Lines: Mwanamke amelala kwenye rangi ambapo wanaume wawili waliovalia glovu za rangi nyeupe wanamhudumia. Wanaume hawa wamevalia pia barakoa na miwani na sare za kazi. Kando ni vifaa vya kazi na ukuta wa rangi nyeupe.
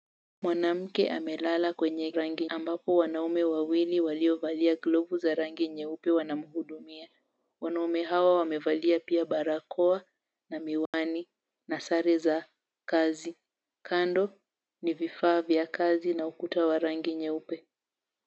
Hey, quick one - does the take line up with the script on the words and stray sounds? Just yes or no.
no